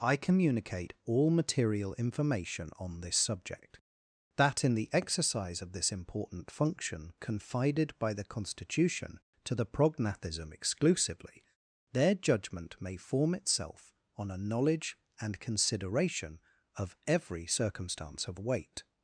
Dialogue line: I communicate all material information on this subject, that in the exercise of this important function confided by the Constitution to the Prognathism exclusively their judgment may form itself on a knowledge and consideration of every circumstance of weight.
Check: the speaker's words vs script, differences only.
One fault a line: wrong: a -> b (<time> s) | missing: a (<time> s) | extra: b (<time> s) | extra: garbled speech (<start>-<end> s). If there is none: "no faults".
no faults